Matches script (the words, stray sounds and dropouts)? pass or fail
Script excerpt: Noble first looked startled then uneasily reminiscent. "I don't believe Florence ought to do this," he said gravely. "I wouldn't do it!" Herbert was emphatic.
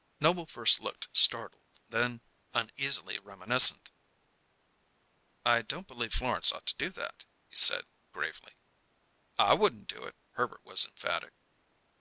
fail